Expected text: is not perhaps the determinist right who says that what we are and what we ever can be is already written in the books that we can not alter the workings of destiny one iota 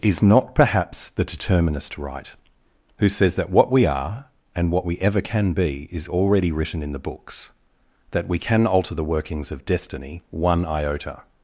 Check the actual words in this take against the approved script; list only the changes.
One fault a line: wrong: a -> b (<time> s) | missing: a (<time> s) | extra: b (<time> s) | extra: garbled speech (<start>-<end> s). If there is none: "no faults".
missing: not (8.7 s)